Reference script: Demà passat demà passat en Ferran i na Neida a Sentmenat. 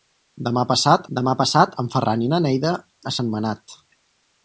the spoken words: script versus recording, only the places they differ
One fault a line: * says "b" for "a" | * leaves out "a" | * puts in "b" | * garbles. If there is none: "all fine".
all fine